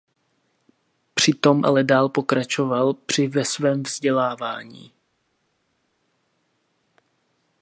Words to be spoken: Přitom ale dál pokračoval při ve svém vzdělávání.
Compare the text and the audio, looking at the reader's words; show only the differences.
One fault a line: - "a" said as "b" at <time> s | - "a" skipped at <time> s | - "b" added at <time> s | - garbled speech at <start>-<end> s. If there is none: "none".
none